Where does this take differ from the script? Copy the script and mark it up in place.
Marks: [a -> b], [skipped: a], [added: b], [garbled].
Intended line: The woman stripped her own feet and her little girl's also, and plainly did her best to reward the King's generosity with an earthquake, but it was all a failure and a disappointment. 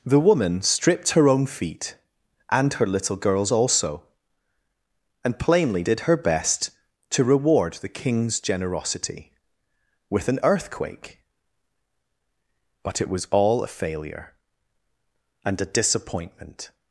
The woman stripped her own feet and her little girl's also, and plainly did her best to reward the King's generosity with an earthquake, but it was all a failure and a disappointment.